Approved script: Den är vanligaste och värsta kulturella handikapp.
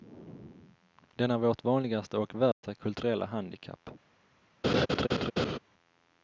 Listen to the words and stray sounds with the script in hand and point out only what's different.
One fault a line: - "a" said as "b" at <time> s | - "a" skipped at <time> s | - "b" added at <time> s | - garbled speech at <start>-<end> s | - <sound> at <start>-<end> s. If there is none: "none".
- "vårt" added at 1.4 s
- dropout at 2.5-2.6 s
- laugh at 4.6-5.6 s